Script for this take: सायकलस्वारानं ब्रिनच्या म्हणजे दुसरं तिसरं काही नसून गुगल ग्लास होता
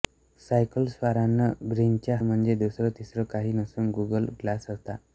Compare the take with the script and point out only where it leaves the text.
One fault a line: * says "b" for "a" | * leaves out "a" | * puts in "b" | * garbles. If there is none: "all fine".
all fine